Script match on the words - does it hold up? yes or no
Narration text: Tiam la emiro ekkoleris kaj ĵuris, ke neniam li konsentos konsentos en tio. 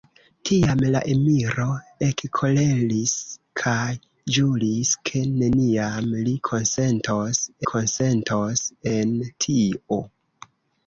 yes